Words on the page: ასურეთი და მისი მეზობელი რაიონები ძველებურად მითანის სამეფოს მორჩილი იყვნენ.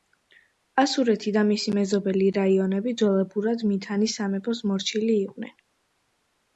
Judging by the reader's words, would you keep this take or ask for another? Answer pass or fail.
pass